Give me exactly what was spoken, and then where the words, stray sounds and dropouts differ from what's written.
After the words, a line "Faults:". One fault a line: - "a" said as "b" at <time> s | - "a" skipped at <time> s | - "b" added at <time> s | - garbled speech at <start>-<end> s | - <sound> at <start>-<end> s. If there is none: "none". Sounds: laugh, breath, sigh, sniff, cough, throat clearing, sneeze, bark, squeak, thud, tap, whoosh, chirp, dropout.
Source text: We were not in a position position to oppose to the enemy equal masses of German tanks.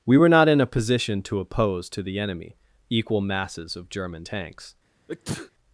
We were not in a position to oppose to the enemy equal masses of German tanks.
Faults:
- "position" skipped at 1.2 s
- sneeze at 5.1-5.5 s